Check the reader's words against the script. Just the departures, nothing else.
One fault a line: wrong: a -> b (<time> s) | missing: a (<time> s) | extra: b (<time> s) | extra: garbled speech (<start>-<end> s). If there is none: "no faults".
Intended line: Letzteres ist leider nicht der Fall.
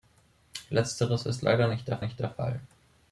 extra: nicht der (2.0 s)